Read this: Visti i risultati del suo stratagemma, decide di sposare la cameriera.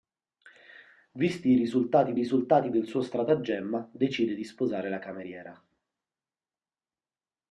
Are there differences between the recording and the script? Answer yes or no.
yes